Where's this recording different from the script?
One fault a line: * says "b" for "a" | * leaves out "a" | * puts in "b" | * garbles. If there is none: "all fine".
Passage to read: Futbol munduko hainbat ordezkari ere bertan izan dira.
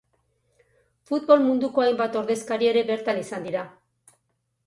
all fine